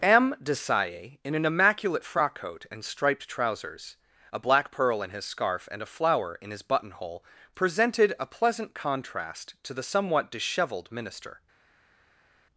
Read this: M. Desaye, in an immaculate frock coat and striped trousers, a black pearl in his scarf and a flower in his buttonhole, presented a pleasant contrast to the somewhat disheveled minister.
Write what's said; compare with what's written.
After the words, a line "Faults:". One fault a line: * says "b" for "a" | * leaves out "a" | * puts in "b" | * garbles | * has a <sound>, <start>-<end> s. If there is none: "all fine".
M. Desaye, in an immaculate frock coat and striped trousers, a black pearl in his scarf and a flower in his buttonhole, presented a pleasant contrast to the somewhat disheveled minister.
Faults:
all fine